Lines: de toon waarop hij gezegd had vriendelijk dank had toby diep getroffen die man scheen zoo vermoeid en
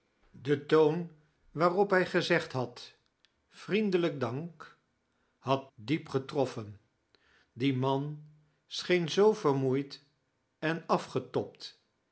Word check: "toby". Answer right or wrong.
wrong